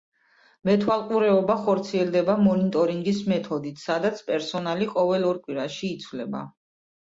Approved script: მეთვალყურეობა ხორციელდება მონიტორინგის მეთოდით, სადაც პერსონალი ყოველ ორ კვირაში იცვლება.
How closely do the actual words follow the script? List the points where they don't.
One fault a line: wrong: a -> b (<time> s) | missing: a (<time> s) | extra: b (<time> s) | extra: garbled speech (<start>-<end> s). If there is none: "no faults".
no faults